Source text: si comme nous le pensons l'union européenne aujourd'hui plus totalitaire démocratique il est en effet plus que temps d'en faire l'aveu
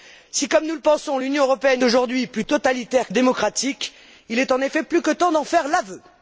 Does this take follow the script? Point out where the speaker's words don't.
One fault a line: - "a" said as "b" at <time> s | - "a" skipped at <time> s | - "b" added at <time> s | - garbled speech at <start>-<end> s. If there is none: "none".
none